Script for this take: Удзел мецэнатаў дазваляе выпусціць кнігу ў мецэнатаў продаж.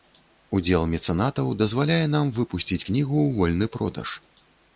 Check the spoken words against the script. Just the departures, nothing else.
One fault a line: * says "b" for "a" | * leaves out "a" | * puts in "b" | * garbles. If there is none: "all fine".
* puts in "нам"
* says "вольны" for "мецэнатаў"